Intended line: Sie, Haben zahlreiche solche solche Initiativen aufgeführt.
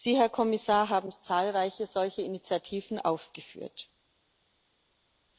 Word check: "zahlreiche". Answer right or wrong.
right